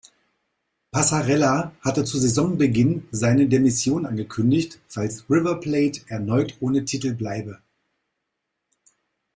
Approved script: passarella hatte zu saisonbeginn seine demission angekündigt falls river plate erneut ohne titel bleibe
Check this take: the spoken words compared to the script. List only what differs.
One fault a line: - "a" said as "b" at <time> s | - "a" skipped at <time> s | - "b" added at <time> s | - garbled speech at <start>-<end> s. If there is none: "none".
none